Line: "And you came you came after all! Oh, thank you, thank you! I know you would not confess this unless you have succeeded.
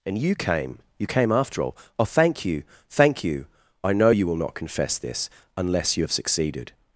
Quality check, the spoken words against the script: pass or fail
fail